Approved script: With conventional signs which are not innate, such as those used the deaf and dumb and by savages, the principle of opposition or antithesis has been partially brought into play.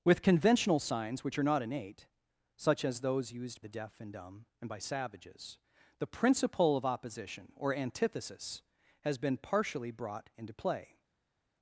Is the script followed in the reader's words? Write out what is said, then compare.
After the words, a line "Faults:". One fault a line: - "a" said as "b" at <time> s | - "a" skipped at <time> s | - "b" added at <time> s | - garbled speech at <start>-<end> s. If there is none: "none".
With conventional signs which are not innate, such as those used the deaf and dumb and by savages, the principle of opposition or antithesis has been partially brought into play.
Faults:
none